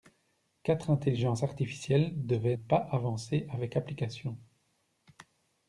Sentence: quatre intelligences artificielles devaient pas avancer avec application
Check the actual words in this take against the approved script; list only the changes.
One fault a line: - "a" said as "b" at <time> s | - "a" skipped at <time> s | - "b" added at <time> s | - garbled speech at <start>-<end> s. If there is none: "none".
none